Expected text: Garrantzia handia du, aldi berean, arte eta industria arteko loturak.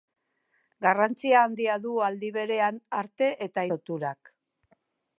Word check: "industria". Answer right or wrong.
wrong